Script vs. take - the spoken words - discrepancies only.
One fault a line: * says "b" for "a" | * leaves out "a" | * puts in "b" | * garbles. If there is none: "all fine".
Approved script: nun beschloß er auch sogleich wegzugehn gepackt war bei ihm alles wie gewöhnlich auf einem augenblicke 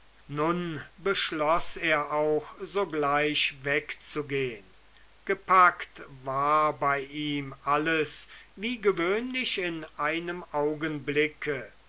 * says "in" for "auf"